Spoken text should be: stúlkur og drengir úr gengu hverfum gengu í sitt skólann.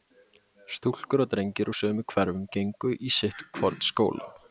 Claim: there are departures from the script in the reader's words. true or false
true